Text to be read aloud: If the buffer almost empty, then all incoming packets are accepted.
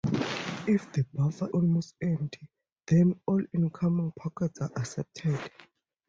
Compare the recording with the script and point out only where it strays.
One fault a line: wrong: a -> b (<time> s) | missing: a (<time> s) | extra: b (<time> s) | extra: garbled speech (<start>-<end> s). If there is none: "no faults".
no faults